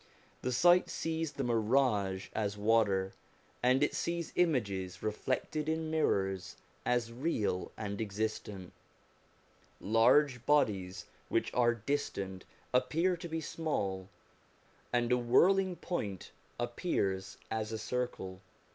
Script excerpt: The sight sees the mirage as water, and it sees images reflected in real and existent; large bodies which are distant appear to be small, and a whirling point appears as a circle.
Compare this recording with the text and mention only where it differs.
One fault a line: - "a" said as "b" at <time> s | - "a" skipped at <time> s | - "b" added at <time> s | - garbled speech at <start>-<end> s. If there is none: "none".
- "mirrors as" added at 5.9 s